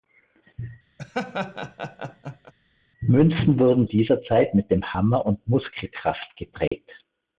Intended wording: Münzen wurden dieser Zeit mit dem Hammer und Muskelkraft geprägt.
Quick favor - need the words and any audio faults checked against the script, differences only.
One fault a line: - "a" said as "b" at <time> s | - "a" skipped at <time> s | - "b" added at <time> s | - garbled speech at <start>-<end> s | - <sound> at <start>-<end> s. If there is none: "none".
- laugh at 1.0-2.5 s
- dropout at 6.7-6.7 s